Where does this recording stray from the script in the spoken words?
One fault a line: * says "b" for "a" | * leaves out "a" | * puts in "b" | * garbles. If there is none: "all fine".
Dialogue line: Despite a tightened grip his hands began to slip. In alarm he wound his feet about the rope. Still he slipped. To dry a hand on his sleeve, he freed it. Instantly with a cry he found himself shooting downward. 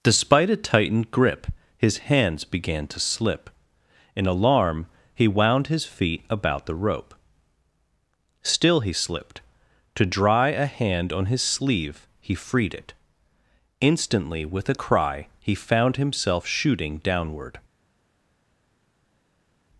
all fine